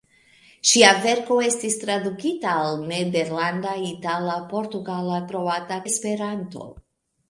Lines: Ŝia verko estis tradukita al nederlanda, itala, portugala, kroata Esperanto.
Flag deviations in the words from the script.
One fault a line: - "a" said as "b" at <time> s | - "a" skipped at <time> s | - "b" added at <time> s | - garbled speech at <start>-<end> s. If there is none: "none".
none